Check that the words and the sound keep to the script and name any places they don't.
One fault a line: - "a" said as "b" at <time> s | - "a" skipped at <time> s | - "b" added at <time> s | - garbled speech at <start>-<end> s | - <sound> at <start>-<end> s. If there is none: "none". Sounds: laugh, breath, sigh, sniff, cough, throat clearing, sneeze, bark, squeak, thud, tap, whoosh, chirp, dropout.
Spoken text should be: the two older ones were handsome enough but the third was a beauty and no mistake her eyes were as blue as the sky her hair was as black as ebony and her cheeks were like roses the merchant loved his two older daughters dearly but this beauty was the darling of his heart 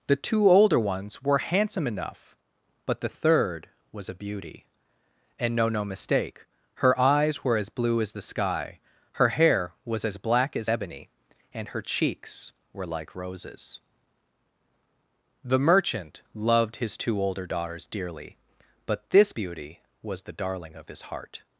- "no" added at 5.7 s